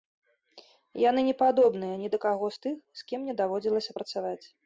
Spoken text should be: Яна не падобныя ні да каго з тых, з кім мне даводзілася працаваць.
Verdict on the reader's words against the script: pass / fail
fail